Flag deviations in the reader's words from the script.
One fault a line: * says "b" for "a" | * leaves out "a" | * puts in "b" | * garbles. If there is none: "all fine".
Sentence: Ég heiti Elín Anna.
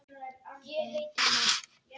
* leaves out "Elín"